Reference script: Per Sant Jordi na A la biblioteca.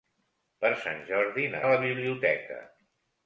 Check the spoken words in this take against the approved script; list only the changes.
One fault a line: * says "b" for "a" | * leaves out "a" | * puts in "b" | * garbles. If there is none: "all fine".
all fine